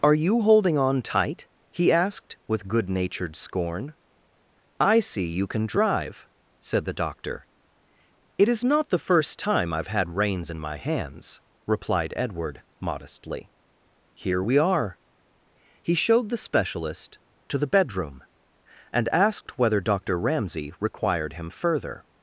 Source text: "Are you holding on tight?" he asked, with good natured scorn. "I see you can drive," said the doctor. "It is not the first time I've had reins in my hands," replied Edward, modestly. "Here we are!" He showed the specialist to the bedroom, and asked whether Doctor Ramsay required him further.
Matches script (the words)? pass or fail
pass